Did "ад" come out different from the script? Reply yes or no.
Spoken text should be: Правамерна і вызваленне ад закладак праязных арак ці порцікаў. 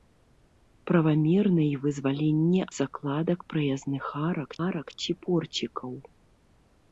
yes